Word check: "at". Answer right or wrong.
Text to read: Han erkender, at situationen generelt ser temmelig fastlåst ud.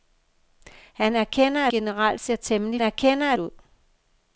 wrong